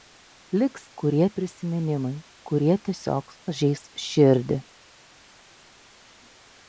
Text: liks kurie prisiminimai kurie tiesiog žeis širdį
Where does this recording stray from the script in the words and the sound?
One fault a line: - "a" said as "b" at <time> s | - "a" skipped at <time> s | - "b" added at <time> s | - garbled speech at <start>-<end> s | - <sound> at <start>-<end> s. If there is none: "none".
none